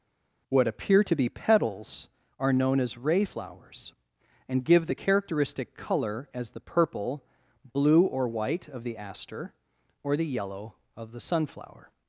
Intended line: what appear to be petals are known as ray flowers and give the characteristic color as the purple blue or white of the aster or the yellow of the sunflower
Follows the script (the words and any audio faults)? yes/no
yes